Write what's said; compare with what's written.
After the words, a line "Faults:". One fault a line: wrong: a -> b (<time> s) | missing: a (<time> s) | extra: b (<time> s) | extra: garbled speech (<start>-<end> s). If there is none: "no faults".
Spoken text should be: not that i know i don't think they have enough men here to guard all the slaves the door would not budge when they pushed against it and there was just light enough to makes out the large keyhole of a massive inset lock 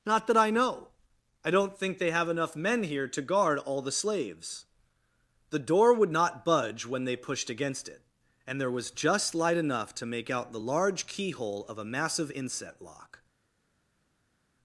not that i know i don't think they have enough men here to guard all the slaves the door would not budge when they pushed against it and there was just light enough to make out the large keyhole of a massive inset lock
Faults:
wrong: makes -> make (10.1 s)